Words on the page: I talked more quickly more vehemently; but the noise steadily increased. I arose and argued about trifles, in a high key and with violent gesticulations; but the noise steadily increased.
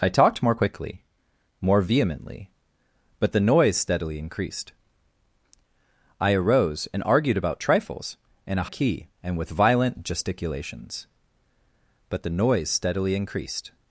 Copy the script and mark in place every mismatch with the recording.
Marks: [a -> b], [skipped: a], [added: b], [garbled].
I talked more quickly more vehemently; but the noise steadily increased. I arose and argued about trifles, in a [skipped: high] key and with violent gesticulations; but the noise steadily increased.